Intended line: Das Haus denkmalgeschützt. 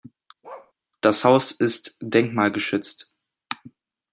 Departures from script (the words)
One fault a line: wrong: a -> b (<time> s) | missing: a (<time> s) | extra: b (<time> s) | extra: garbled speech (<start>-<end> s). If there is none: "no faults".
extra: ist (1.5 s)